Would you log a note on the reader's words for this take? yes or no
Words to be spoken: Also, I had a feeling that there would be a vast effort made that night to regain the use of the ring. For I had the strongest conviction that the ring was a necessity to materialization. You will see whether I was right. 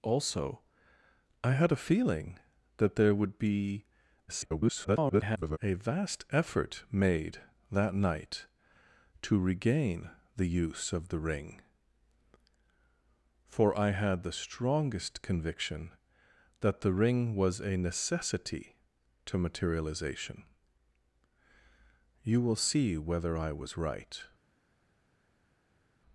yes